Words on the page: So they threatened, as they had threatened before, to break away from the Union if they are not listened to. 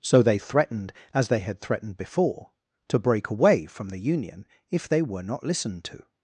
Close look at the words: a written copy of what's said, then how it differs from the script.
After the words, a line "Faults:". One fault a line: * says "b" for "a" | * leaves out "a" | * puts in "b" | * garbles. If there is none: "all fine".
So they threatened, as they had threatened before, to break away from the Union if they were not listened to.
Faults:
* says "were" for "are"